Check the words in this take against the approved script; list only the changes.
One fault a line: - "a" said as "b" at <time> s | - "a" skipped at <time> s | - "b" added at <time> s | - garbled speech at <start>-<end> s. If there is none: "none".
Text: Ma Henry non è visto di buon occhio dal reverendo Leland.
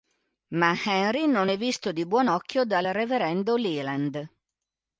none